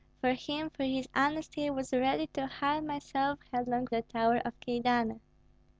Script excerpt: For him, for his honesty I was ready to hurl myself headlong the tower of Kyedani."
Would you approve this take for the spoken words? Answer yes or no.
yes